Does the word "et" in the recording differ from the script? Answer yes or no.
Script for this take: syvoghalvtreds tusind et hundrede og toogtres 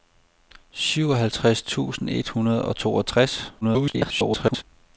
no